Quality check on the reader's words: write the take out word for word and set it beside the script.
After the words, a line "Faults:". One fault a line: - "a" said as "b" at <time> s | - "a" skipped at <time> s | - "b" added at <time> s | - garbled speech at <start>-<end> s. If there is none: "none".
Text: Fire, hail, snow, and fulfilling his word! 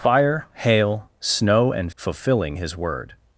Fire, hail, snow, and fulfilling his word!
Faults:
none